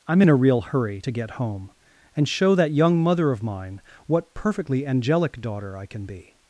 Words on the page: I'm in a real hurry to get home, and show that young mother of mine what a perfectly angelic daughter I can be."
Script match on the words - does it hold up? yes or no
no